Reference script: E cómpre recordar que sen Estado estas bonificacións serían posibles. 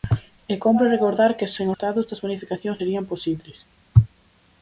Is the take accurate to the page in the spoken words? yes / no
yes